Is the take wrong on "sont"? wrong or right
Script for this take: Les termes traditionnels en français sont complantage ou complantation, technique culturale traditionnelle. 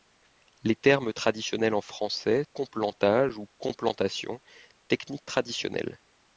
wrong